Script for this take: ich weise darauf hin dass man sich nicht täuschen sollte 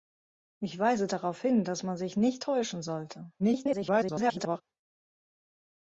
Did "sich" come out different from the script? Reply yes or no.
no